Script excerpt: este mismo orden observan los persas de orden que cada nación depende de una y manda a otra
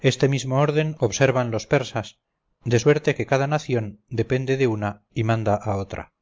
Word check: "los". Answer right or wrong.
right